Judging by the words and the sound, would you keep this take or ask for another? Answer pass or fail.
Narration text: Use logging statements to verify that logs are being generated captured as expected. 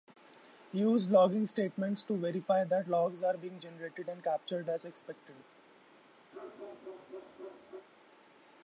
fail